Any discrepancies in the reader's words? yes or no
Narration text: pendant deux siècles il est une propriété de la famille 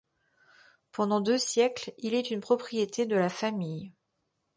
no